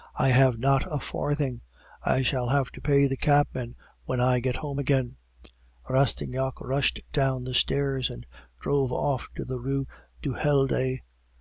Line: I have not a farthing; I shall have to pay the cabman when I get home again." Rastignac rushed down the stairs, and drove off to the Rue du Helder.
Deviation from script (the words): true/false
false